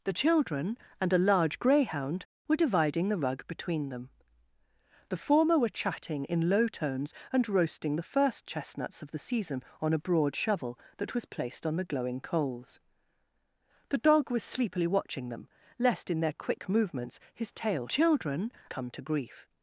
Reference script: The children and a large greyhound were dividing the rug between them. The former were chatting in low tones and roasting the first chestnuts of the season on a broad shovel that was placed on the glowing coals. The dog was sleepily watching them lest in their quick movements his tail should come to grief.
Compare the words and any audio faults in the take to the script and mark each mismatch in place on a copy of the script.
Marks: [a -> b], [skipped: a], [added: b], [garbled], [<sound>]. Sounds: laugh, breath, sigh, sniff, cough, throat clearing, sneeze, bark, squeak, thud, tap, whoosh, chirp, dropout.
The children and a large greyhound were dividing the rug between them. The former were chatting in low tones and roasting the first chestnuts of the season on a broad shovel that was placed on the glowing coals. The dog was sleepily watching them lest in their quick movements his tail [should -> children] come to grief.